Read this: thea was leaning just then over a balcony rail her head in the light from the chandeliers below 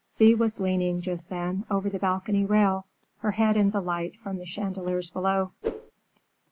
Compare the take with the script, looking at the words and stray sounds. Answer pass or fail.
fail